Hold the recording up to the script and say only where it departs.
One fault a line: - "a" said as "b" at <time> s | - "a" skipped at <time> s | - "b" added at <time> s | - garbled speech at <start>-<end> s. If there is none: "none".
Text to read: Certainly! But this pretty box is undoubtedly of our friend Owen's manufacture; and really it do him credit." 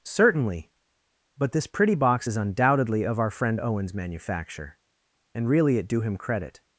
none